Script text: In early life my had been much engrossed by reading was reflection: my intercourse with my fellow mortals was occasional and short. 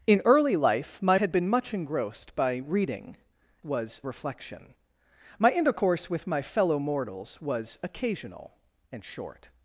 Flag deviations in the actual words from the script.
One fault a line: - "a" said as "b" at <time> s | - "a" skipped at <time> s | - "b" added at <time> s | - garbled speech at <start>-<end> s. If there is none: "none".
none